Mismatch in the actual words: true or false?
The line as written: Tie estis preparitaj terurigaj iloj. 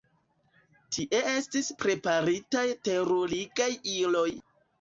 false